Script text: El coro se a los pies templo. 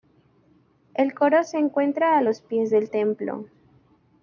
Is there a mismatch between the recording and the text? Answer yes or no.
yes